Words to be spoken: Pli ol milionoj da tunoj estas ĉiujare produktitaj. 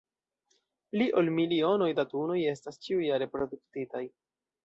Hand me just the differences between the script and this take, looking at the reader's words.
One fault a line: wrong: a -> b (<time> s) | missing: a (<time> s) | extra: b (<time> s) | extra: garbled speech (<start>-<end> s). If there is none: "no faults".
no faults